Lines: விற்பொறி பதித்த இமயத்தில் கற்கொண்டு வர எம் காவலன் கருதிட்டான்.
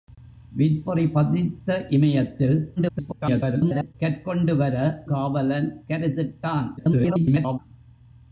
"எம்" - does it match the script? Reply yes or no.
no